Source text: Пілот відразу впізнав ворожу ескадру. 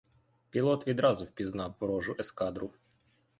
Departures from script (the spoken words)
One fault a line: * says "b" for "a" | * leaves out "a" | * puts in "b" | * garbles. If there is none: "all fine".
all fine